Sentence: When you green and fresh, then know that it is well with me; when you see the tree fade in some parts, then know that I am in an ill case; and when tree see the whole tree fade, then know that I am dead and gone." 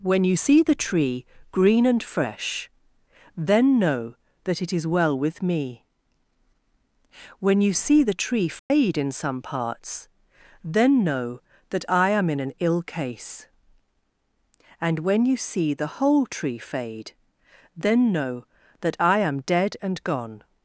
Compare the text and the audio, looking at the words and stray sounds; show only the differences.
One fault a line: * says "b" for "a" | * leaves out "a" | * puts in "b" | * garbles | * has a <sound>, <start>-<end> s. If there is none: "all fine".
* puts in "see the tree"
* has a dropout, 8.6-8.7 s
* says "you" for "tree"